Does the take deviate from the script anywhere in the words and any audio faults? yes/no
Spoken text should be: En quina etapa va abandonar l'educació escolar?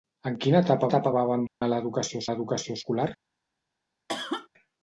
yes